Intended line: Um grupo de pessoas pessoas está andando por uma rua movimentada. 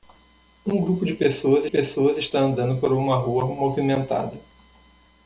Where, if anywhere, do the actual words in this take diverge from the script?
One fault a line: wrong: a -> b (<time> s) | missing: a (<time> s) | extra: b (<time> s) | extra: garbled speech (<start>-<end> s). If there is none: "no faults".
no faults